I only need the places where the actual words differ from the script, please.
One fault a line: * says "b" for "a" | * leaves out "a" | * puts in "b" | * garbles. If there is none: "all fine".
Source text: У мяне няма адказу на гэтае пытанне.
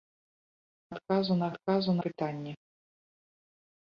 * leaves out "мяне няма"
* says "адказу" for "гэтае"